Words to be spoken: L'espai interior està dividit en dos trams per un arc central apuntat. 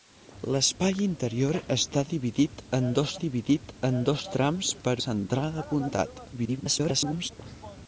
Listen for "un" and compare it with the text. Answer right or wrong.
wrong